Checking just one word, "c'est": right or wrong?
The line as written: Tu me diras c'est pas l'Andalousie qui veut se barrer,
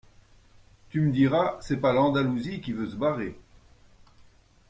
right